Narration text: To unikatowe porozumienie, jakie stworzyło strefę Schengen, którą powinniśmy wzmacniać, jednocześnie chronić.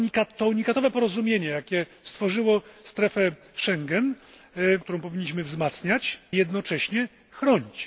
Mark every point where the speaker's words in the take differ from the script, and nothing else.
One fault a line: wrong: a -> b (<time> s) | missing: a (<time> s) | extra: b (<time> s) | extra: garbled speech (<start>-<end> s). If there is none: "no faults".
no faults